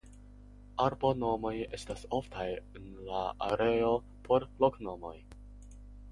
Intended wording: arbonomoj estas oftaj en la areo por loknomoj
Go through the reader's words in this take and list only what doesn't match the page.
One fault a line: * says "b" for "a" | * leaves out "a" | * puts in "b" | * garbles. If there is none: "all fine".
all fine